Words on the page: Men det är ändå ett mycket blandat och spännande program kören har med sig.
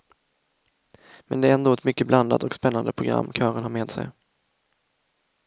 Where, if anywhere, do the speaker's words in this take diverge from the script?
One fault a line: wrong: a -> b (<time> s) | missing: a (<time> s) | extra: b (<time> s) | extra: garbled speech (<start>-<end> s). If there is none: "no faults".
no faults